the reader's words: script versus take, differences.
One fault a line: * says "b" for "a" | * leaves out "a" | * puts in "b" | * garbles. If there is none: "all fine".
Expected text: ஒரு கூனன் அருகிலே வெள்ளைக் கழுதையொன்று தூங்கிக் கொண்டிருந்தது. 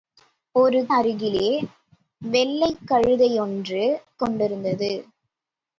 * leaves out "கூனன்"
* leaves out "தூங்கிக்"